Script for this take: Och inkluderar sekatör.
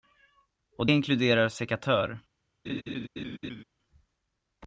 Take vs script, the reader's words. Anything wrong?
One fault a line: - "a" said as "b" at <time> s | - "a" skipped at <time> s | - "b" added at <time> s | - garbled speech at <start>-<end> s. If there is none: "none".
none